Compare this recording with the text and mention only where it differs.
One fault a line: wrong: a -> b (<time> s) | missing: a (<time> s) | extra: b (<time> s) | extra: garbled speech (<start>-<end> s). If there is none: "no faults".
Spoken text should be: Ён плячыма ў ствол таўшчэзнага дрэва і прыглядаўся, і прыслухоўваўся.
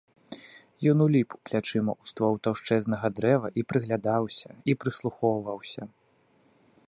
extra: уліп (1.1 s)